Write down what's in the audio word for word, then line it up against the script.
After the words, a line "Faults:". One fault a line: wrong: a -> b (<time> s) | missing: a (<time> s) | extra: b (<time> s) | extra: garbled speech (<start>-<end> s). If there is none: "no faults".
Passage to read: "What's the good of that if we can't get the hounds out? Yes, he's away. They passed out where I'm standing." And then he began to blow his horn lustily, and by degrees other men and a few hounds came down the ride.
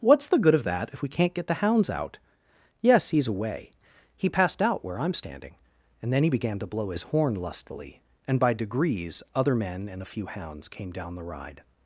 "What's the good of that if we can't get the hounds out? Yes, he's away. He passed out where I'm standing." And then he began to blow his horn lustily, and by degrees other men and a few hounds came down the ride.
Faults:
wrong: They -> He (4.2 s)